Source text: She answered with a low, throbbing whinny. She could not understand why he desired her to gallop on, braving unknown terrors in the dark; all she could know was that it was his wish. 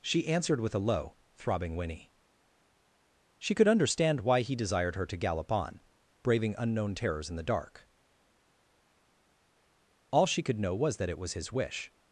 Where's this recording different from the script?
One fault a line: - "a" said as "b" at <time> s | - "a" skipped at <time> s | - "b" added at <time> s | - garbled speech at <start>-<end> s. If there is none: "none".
- "not" skipped at 3.7 s